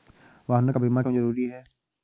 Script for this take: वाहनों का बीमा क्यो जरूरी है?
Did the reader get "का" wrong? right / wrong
right